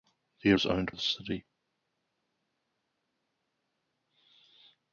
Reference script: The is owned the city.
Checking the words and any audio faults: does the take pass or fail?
pass